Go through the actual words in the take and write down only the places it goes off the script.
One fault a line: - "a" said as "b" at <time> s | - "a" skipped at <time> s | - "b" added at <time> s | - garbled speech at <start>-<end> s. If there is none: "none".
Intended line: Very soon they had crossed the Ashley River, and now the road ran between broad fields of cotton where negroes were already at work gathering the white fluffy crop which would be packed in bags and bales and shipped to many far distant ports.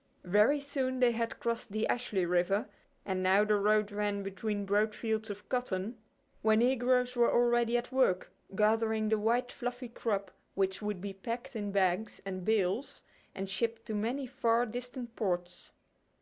none